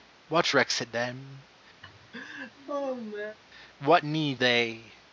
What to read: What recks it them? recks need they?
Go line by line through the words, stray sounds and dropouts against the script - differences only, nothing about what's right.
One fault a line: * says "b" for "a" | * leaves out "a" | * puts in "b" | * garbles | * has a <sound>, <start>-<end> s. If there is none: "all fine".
* has a laugh, 1.8-3.4 s
* says "what" for "recks"